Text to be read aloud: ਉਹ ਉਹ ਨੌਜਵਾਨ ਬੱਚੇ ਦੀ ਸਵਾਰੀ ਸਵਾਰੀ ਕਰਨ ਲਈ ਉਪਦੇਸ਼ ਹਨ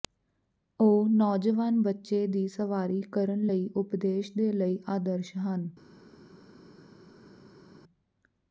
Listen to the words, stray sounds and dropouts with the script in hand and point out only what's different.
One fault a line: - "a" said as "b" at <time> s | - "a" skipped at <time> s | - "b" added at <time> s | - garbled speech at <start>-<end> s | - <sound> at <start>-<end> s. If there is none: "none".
- "ਉਹ" skipped at 1.1 s
- "ਸਵਾਰੀ" skipped at 3.0 s
- "ਦੇ ਲਈ ਆਦਰਸ਼" added at 4.4 s